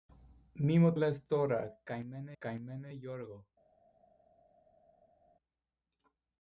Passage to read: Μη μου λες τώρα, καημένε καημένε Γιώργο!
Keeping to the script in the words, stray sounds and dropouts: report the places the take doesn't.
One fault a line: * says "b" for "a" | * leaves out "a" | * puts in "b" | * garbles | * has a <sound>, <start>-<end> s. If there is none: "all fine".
all fine